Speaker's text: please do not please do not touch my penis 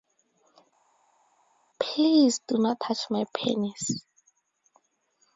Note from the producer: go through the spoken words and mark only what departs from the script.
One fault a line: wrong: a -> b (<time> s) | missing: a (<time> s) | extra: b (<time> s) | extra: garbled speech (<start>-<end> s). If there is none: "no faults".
missing: please do not (2.8 s)